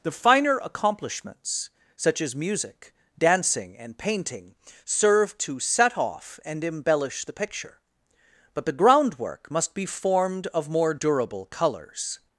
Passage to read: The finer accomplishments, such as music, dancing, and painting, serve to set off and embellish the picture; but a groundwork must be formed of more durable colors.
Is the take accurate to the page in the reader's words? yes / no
no